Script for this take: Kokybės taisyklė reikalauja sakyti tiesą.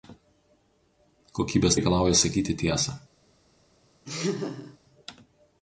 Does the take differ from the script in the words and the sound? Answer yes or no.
yes